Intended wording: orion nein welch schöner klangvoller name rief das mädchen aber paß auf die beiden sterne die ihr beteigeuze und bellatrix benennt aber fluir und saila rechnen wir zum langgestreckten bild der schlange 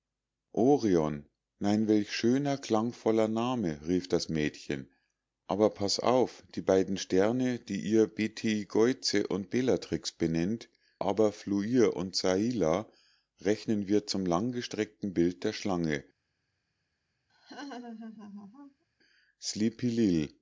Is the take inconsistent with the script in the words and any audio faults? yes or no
yes